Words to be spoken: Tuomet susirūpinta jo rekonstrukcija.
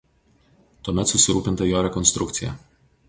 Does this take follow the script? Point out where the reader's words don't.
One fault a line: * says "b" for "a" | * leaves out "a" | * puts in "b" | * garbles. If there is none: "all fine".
all fine